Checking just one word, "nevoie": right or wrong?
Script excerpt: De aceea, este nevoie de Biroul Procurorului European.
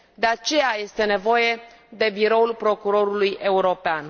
right